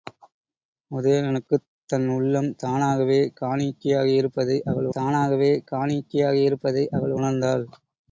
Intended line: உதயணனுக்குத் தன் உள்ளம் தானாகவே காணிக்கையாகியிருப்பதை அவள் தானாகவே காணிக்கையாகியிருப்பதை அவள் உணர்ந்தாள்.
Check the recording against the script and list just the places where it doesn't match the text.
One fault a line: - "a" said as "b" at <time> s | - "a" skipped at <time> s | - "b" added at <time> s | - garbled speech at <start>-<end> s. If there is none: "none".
none